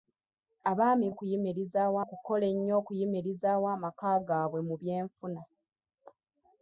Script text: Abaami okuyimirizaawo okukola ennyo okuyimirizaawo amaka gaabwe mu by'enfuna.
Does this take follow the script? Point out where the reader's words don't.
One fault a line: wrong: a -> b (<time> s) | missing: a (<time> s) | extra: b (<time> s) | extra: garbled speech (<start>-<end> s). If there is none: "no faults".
no faults